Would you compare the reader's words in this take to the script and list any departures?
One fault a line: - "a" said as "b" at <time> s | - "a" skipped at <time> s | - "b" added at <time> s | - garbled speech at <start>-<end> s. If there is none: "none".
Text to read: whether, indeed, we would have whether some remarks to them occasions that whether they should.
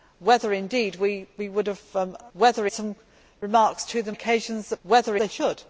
none